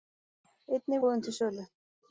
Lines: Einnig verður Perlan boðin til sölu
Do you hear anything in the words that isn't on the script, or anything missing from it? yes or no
yes